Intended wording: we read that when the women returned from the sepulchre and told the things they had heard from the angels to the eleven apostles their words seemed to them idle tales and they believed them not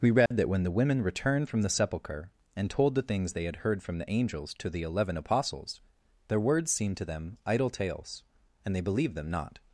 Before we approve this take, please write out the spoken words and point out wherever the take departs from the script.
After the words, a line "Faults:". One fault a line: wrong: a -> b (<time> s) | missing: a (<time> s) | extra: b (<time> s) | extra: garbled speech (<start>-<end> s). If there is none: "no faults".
we read that when the women returned from the sepulchre and told the things they had heard from the angels to the eleven apostles their words seemed to them idle tales and they believed them not
Faults:
no faults